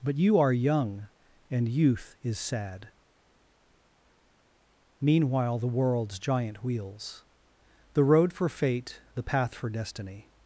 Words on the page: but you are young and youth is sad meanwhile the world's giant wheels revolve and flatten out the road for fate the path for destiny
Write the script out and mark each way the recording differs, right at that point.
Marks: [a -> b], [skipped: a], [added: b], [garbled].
but you are young and youth is sad meanwhile the world's giant wheels [skipped: revolve and flatten out] the road for fate the path for destiny